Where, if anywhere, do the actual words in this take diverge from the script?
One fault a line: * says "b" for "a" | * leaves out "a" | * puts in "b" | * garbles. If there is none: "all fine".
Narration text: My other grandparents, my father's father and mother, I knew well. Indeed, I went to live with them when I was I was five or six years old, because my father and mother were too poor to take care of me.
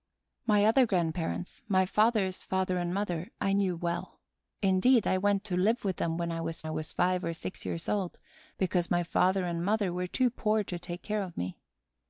all fine